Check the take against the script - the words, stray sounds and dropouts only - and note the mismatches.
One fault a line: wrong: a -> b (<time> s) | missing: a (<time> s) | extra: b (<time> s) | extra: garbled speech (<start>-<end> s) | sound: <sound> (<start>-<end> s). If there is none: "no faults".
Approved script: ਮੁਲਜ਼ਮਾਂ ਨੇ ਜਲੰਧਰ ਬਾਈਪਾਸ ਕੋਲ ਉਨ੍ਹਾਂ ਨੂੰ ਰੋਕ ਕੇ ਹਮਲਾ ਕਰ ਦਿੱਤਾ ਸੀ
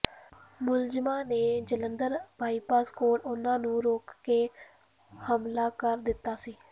no faults